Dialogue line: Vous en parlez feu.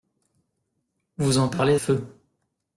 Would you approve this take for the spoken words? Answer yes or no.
yes